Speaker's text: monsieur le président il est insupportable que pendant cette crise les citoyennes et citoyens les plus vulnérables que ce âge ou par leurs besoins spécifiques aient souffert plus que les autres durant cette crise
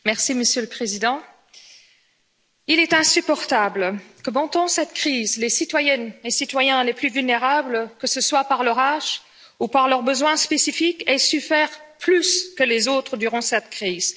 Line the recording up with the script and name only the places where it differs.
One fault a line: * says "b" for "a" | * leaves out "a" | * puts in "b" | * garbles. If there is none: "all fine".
* puts in "soit par leur"